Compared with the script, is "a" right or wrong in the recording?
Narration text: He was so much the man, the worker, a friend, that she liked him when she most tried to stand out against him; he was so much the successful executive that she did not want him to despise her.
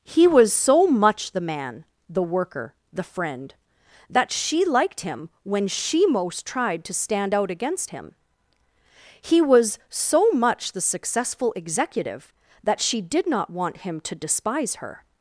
wrong